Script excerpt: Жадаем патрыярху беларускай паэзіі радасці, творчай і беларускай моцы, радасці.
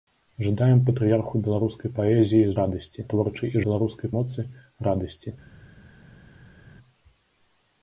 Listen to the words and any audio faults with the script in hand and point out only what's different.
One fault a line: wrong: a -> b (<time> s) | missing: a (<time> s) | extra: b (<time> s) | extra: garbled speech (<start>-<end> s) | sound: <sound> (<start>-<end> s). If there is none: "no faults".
no faults